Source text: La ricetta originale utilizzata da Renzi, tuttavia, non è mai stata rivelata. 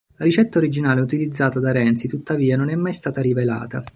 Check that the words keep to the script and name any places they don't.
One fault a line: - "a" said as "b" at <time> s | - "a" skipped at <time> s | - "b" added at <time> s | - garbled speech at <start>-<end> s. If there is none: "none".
none